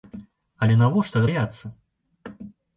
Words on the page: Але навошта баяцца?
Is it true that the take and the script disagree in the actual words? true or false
false